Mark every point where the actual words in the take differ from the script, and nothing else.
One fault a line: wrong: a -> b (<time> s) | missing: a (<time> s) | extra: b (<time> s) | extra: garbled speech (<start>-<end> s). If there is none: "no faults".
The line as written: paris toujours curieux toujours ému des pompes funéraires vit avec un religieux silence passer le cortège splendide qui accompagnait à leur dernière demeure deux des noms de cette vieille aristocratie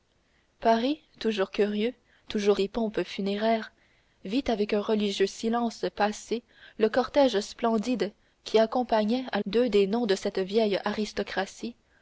missing: ému (2.6 s)
missing: leur dernière demeure (9.4 s)